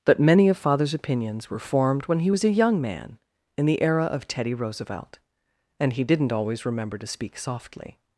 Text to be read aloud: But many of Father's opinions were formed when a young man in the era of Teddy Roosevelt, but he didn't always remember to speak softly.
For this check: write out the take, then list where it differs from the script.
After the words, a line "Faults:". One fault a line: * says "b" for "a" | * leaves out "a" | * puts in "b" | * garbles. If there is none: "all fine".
But many of Father's opinions were formed when he was a young man in the era of Teddy Roosevelt, and he didn't always remember to speak softly.
Faults:
* puts in "he was"
* says "and" for "but"